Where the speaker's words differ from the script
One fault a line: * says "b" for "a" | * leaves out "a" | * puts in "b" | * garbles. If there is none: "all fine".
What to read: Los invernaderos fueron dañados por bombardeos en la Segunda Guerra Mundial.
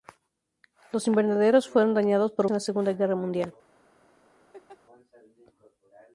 * leaves out "bombardeos"